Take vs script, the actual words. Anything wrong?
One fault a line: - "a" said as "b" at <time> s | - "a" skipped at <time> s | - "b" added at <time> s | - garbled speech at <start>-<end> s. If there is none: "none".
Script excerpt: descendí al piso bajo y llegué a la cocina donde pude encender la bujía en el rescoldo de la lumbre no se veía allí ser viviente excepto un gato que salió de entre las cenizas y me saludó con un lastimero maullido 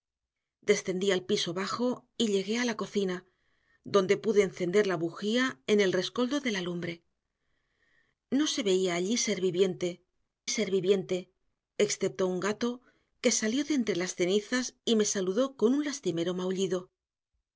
- "ser viviente" added at 10.5 s